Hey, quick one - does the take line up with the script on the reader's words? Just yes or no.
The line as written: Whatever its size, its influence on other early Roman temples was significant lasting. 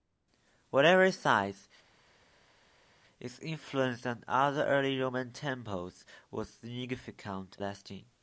yes